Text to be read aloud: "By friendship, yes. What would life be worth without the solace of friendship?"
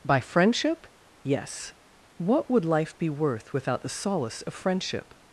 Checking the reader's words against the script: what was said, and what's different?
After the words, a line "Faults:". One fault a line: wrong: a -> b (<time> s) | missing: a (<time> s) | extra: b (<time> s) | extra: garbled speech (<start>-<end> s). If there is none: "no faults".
"By friendship, yes. What would life be worth without the solace of friendship?"
Faults:
no faults